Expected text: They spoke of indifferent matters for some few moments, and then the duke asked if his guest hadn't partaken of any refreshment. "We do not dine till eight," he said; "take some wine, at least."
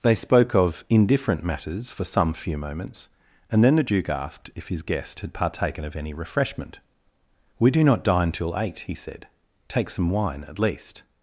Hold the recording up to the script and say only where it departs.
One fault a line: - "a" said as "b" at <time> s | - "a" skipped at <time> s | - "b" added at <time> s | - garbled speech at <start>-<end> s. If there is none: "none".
- "hadn't" said as "had" at 5.2 s